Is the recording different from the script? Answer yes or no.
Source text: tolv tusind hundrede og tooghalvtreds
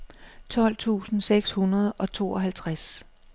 yes